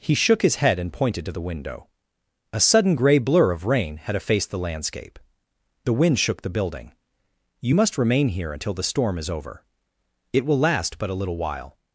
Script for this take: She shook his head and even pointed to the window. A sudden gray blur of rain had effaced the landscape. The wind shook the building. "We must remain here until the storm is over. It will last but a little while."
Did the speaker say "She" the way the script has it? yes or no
no